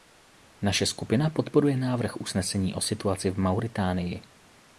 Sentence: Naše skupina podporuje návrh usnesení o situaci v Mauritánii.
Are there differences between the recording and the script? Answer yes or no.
no